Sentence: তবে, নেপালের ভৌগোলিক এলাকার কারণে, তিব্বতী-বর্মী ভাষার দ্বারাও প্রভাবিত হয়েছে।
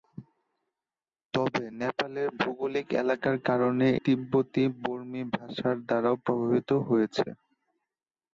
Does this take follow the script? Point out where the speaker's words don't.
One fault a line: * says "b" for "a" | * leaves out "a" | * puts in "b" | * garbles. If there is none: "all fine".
all fine